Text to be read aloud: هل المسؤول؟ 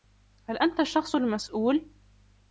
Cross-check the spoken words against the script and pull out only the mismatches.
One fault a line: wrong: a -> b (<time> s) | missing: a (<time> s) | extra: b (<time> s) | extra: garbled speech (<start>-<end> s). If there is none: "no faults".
extra: أنت الشخص (0.5 s)